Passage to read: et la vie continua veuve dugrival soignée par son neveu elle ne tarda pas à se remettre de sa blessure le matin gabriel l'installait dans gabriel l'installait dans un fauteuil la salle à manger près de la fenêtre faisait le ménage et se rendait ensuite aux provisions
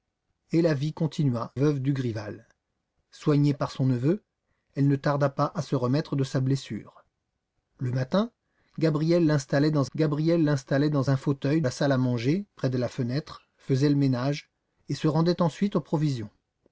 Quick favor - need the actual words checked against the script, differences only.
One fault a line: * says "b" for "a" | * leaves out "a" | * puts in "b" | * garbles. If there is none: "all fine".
all fine